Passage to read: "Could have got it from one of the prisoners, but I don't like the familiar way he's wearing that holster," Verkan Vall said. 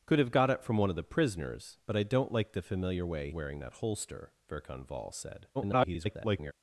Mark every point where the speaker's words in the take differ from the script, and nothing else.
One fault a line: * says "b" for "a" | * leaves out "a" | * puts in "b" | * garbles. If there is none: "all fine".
* leaves out "he's"
* garbles